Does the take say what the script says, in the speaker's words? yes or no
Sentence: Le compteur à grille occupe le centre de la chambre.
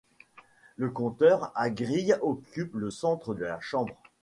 yes